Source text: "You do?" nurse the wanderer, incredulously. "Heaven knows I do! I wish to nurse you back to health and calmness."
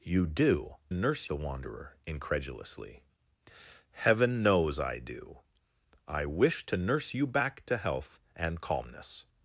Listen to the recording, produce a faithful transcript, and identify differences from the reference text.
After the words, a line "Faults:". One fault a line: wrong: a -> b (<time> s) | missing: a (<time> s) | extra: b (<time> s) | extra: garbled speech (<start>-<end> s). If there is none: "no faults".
"You do?" nurse the wanderer, incredulously. "Heaven knows I do! I wish to nurse you back to health and calmness."
Faults:
no faults